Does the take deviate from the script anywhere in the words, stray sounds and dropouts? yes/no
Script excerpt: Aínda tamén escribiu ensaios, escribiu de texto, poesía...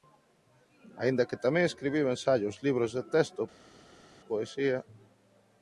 yes